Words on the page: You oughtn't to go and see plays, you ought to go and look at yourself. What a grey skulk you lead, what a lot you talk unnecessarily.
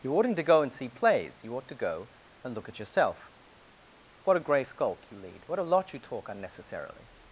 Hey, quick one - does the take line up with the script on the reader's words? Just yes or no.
yes